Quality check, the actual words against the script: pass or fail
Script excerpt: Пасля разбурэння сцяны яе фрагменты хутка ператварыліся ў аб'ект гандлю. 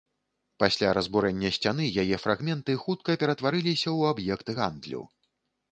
pass